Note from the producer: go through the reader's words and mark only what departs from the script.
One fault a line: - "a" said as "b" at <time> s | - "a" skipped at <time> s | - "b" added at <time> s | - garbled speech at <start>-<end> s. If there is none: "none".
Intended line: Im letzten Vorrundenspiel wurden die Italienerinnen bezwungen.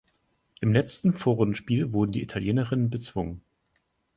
none